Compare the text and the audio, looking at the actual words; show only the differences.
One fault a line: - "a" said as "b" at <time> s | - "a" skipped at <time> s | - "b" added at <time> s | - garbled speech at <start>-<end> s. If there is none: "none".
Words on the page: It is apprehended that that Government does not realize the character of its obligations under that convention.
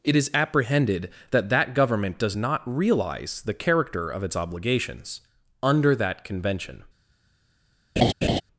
none